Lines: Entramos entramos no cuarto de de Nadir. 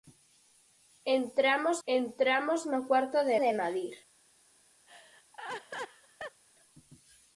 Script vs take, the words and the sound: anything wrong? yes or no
yes